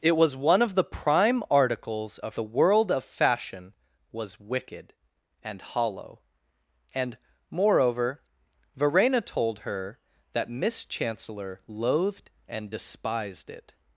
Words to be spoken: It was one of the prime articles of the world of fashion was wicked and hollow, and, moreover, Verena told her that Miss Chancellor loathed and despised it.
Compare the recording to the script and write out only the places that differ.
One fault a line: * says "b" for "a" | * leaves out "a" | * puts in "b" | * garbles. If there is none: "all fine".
all fine